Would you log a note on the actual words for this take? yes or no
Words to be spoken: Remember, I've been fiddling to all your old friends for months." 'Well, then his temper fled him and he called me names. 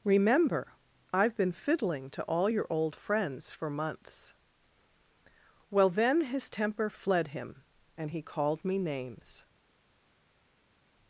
no